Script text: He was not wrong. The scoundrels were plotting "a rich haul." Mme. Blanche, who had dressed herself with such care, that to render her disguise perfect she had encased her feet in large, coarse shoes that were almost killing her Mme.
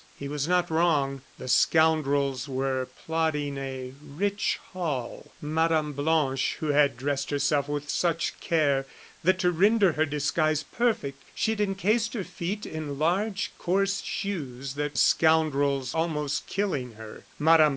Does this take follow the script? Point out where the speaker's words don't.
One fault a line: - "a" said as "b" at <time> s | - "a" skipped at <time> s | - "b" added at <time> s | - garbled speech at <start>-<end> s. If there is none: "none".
- "were" said as "scoundrels" at 14.9 s